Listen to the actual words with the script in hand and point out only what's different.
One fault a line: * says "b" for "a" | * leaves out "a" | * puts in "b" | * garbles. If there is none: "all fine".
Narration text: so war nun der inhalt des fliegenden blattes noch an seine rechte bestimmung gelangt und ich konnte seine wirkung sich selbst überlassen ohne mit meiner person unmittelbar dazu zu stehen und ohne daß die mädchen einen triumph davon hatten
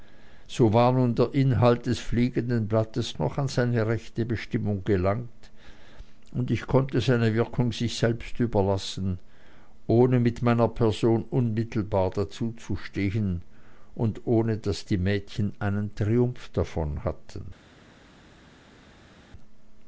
all fine